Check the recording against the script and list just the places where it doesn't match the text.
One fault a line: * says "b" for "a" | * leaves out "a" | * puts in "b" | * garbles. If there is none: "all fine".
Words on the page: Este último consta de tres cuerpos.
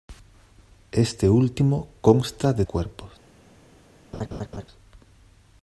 * leaves out "tres"